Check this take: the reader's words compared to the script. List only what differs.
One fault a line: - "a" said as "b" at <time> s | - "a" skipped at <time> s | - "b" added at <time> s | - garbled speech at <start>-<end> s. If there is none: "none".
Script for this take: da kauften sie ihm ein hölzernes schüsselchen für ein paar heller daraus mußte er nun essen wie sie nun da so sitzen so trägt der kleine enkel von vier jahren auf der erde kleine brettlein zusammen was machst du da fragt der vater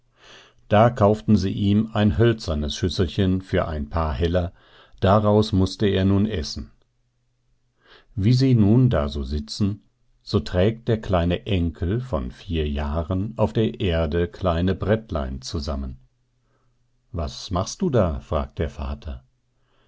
none